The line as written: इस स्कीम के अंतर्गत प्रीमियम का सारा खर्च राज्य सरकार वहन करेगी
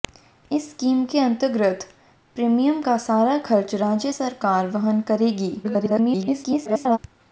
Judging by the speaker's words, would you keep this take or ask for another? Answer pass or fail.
fail